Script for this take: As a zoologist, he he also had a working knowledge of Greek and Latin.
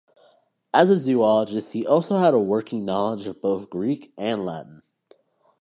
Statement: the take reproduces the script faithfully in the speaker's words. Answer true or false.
false